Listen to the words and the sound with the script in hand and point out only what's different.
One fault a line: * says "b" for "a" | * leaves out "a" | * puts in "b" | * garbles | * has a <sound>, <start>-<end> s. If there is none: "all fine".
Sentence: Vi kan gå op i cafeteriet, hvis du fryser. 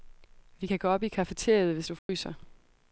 * has a dropout, 2.0-2.1 s